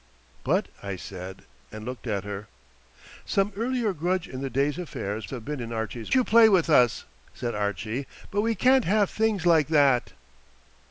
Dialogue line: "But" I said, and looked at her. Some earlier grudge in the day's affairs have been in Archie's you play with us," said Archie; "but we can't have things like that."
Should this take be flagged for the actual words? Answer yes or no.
no